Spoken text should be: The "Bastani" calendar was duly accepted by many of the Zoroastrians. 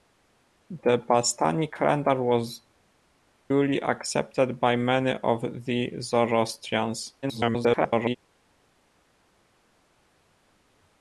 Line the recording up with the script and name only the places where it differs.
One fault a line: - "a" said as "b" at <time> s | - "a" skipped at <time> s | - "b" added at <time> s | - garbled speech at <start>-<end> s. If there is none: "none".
- garbled speech at 7.2-8.2 s